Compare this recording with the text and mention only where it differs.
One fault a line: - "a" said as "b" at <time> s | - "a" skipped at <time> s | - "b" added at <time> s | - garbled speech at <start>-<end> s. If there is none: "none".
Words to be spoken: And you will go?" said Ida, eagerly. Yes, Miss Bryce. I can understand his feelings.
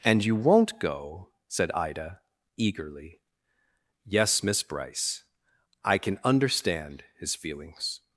- "will" said as "won't" at 0.3 s